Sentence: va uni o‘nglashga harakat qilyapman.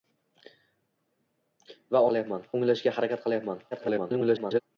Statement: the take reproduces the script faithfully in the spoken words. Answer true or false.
false